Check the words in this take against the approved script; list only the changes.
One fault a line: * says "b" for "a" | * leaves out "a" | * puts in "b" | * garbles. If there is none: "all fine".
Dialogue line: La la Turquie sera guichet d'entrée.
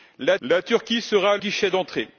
all fine